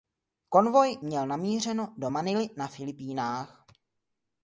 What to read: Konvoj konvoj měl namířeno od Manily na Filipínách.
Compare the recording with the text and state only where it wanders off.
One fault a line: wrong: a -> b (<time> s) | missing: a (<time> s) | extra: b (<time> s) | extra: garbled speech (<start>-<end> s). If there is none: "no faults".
missing: konvoj (1.0 s)
wrong: od -> do (2.0 s)